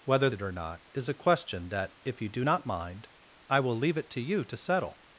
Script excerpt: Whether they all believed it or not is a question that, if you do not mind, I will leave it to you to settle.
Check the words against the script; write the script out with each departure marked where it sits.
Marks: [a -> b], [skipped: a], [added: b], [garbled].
Whether [skipped: they all believed] it or not is a question that, if you do not mind, I will leave it to you to settle.